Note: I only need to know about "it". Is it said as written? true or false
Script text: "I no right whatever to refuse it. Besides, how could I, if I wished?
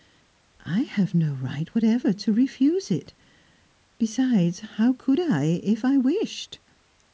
true